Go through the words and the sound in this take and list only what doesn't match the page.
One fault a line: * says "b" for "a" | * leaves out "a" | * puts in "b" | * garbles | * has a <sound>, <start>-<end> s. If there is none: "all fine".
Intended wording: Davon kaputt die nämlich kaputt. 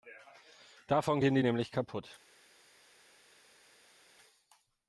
* says "gehen" for "kaputt"